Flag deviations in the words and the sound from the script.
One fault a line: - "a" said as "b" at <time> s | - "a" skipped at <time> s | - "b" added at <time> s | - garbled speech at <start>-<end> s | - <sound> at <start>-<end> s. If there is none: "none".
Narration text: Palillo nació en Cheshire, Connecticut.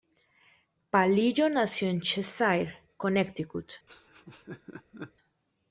- laugh at 3.9-5.1 s